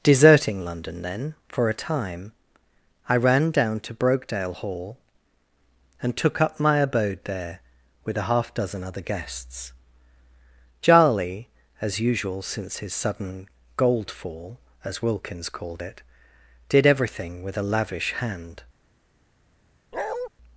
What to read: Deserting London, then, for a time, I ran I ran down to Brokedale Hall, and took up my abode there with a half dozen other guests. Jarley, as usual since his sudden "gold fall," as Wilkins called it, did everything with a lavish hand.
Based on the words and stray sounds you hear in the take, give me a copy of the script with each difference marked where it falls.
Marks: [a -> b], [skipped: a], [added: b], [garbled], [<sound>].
Deserting London, then, for a time, I ran [skipped: I ran] down to Brokedale Hall, and took up my abode there with a half dozen other guests. Jarley, as usual since his sudden "gold fall," as Wilkins called it, did everything with a lavish hand. [bark]